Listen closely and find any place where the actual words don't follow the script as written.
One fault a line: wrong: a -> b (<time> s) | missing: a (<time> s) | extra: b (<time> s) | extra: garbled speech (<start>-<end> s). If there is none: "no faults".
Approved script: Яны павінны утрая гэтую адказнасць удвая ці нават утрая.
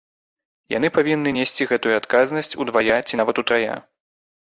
wrong: утрая -> несці (1.4 s)